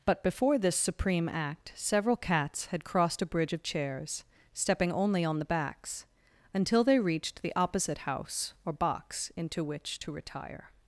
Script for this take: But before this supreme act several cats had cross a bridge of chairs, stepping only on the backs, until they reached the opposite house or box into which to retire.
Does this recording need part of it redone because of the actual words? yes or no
yes